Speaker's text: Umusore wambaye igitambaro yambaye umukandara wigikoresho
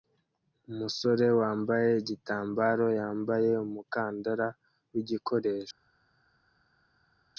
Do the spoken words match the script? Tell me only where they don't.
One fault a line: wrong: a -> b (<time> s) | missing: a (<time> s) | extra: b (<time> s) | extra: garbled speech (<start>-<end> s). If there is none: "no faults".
no faults